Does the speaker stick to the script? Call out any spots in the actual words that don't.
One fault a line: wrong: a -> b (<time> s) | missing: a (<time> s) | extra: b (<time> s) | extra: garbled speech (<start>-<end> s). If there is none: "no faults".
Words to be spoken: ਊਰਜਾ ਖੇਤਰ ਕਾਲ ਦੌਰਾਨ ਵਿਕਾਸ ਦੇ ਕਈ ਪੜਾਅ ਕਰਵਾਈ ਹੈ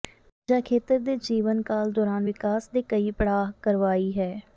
extra: ਦੇ ਜੀਵਨ (1.0 s)